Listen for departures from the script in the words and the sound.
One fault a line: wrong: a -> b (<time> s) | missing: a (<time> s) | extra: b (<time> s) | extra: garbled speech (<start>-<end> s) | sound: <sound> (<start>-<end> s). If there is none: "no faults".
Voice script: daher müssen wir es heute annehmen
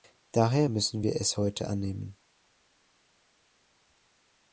no faults